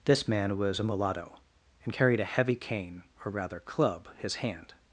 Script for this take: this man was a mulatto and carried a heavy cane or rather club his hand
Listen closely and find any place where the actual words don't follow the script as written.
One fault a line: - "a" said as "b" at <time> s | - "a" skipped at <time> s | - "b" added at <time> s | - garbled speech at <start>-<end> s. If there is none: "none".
none